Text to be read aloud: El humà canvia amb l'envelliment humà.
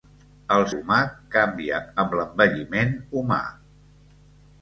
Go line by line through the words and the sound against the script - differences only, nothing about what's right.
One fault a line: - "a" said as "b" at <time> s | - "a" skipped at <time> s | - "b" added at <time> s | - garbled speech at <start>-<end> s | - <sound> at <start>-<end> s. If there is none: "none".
none